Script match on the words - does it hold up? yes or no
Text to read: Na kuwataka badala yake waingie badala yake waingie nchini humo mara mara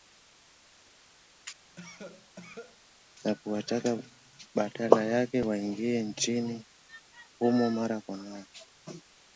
no